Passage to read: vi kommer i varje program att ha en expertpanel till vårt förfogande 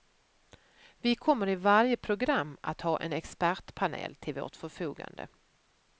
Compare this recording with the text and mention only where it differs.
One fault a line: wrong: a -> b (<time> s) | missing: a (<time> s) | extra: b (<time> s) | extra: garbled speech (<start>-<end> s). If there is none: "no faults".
no faults